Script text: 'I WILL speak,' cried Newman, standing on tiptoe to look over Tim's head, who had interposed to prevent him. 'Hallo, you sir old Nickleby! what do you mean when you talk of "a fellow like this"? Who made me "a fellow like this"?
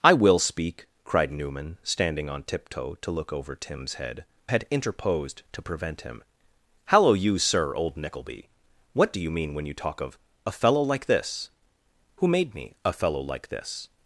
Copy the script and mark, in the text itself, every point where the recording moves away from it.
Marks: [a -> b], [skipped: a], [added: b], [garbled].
'I WILL speak,' cried Newman, standing on tiptoe to look over Tim's head, [skipped: who] had interposed to prevent him. 'Hallo, you sir old Nickleby! what do you mean when you talk of "a fellow like this"? Who made me "a fellow like this"?